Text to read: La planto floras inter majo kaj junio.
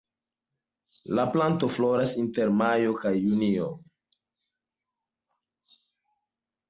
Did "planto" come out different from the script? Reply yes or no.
no